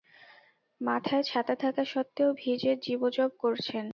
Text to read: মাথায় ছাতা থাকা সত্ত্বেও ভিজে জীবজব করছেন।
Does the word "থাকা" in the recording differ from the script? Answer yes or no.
no